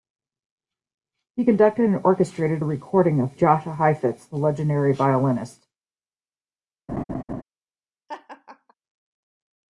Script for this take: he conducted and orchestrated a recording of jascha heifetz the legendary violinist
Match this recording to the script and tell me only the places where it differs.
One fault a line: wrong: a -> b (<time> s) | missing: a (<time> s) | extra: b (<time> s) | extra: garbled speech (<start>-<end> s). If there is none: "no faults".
no faults